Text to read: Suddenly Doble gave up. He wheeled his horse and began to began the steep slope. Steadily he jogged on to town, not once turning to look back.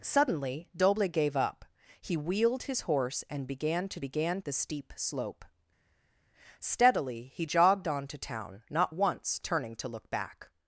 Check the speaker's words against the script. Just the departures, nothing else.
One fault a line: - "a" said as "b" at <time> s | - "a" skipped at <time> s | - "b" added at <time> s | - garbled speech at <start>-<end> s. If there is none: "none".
none